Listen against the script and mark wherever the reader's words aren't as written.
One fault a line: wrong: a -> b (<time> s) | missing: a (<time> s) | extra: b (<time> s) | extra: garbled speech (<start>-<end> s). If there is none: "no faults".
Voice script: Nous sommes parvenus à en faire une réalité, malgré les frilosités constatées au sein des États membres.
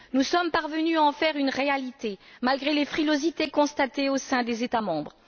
no faults